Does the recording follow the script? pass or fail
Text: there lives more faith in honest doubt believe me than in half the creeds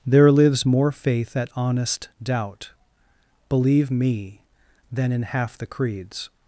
fail